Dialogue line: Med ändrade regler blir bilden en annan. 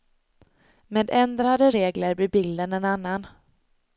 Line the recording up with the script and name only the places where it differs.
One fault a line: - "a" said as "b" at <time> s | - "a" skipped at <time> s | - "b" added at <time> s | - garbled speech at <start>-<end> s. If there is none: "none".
none